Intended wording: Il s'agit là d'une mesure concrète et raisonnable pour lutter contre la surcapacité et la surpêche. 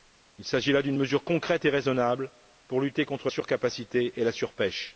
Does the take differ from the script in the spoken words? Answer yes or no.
yes